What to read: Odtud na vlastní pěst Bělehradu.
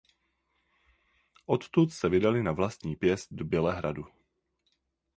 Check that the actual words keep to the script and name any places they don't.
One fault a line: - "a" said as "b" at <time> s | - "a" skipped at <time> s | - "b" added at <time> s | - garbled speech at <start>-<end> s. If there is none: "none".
- "se vydali" added at 1.9 s
- "do" added at 3.3 s